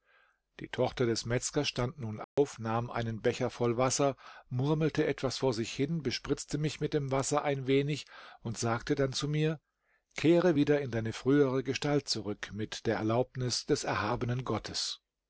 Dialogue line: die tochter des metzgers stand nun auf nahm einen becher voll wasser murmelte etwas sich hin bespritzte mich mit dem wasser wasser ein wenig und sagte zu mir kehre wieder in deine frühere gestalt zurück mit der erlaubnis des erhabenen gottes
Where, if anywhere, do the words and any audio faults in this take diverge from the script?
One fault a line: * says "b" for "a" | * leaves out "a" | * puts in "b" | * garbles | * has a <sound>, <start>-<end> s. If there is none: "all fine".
* has a dropout, 2.2-2.4 s
* puts in "vor"
* leaves out "wasser"
* puts in "dann"